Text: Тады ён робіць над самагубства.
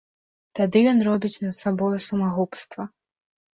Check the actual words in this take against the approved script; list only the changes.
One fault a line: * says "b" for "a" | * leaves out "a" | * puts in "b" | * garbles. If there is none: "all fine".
* puts in "сабою"